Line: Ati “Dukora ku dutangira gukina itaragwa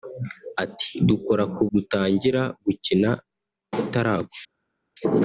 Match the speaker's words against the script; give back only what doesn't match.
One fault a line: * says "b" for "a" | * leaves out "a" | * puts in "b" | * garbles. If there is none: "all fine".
all fine